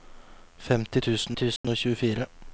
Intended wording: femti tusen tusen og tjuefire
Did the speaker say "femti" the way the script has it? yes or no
yes